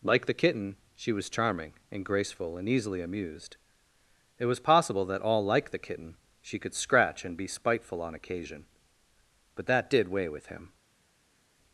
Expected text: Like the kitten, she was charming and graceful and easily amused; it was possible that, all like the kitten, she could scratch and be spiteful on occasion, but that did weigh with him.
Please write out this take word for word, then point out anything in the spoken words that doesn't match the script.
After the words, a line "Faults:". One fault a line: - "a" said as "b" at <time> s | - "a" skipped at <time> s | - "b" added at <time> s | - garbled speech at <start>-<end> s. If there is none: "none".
Like the kitten, she was charming and graceful and easily amused; it was possible that, all like the kitten, she could scratch and be spiteful on occasion, but that did weigh with him.
Faults:
none